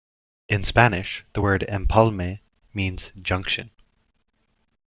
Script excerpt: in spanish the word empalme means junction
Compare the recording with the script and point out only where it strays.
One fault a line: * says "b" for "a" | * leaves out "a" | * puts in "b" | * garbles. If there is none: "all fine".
all fine